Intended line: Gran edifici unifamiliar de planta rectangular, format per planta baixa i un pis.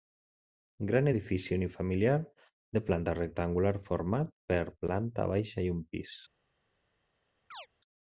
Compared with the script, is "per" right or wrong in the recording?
right